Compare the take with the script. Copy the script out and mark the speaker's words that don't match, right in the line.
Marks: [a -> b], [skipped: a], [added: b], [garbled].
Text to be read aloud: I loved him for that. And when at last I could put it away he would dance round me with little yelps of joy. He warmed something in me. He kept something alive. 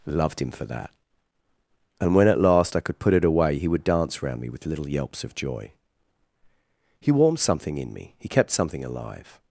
[skipped: I] loved him for that. And when at last I could put it away he would dance round me with little yelps of joy. He warmed something in me. He kept something alive.